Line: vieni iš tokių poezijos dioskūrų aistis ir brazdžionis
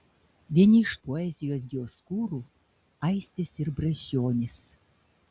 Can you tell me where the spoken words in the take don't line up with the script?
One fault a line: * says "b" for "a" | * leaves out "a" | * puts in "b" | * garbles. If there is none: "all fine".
* leaves out "tokių"